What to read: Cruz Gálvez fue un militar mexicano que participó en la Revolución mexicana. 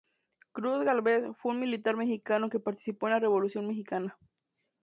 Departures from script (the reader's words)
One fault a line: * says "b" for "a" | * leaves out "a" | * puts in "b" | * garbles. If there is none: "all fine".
all fine